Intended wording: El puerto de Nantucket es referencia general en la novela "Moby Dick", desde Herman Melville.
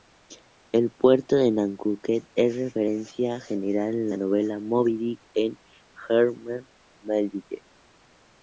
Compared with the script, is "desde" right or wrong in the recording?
wrong